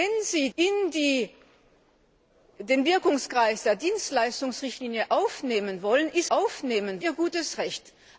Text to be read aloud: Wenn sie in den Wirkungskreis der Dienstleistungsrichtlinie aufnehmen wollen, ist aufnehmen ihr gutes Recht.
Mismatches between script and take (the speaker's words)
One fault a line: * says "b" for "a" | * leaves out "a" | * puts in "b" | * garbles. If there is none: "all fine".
all fine